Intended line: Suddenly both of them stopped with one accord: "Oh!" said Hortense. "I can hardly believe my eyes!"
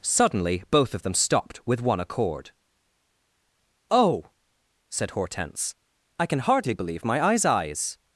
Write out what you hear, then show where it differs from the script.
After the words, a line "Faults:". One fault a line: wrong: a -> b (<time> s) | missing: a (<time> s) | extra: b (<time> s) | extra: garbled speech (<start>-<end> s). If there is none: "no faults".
Suddenly both of them stopped with one accord: "Oh!" said Hortense. "I can hardly believe my eyes eyes!"
Faults:
extra: eyes (7.5 s)